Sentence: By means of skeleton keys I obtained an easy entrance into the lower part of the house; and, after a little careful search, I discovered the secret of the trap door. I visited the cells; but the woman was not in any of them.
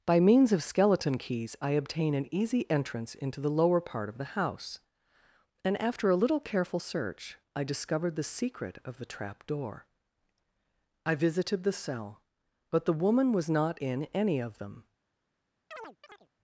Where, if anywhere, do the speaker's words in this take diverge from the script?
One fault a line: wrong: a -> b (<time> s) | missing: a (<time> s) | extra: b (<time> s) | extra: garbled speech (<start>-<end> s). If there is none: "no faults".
wrong: obtained -> obtain (1.7 s)
wrong: cells -> cell (11.7 s)